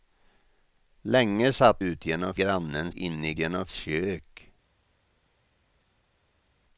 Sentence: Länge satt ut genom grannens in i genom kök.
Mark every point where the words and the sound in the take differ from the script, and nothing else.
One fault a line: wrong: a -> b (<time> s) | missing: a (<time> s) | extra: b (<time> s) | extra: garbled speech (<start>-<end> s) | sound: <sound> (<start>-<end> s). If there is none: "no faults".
no faults